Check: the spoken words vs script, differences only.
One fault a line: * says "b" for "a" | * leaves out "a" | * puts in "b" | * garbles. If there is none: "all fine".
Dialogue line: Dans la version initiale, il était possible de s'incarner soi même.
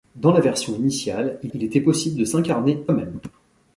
* puts in "il"
* leaves out "soi"